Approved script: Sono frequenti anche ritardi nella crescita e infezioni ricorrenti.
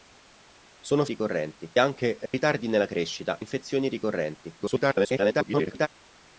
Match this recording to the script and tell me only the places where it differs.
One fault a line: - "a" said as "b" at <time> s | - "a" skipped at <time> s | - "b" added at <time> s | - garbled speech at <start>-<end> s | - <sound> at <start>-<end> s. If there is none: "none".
- "frequenti" said as "ricorrenti" at 1.0 s
- dropout at 2.3-2.3 s
- "e" skipped at 3.4 s
- garbled speech at 4.6-5.9 s